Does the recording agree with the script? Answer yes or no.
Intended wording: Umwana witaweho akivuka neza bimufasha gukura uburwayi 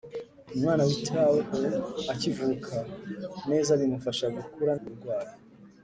yes